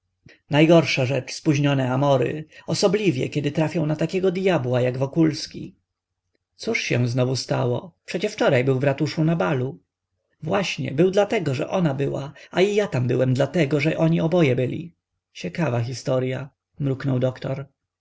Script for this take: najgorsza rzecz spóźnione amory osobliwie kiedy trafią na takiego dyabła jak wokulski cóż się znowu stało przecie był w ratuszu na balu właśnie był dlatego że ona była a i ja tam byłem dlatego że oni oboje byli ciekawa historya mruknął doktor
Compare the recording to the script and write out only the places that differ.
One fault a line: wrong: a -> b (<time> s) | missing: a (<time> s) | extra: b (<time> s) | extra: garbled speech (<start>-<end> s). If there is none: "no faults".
extra: wczoraj (8.3 s)